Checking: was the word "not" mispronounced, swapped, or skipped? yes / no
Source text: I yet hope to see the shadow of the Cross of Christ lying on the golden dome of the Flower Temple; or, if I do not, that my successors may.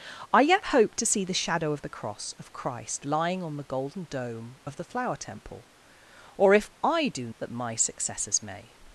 yes